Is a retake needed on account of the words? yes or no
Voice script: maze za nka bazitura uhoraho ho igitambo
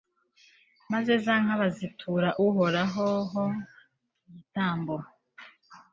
no